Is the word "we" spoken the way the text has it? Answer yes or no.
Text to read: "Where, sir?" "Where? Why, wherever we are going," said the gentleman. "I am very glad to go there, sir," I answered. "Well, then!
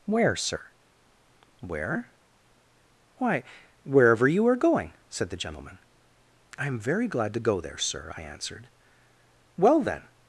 no